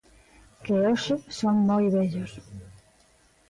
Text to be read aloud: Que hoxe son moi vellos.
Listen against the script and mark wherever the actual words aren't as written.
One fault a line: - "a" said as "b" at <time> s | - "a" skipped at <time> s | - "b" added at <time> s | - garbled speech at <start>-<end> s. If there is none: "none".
none